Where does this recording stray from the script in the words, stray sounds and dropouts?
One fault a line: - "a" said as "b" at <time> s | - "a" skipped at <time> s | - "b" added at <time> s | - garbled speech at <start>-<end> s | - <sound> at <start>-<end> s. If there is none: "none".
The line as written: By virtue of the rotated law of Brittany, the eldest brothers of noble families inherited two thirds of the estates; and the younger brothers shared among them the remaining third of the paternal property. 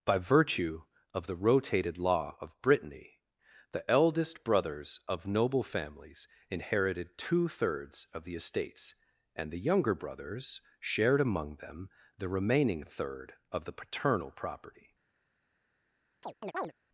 - chirp at 16.2-16.7 s